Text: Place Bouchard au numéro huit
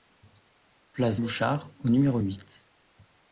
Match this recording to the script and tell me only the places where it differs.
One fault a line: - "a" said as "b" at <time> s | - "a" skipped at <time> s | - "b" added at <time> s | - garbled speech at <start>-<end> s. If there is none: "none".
none